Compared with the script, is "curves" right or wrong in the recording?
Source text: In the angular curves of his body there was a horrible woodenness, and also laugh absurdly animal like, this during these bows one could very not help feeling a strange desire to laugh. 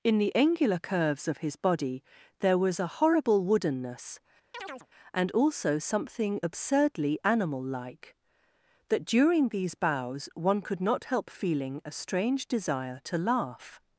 right